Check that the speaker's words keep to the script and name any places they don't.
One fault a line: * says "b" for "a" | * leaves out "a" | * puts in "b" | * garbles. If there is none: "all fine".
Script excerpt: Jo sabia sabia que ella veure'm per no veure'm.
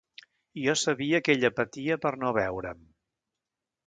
* leaves out "sabia"
* says "patia" for "veure'm"